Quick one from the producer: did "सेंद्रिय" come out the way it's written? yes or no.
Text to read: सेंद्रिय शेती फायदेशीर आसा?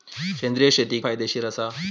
yes